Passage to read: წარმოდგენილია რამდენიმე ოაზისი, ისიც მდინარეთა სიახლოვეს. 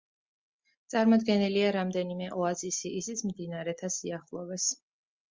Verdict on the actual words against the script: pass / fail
pass